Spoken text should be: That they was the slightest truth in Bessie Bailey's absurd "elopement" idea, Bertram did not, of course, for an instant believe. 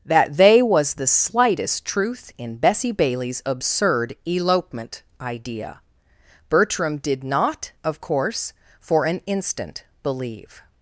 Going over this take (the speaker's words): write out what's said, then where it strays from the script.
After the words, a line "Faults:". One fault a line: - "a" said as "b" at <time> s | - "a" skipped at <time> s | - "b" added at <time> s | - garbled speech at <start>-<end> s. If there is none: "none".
That they was the slightest truth in Bessie Bailey's absurd "elopement" idea, Bertram did not, of course, for an instant believe.
Faults:
none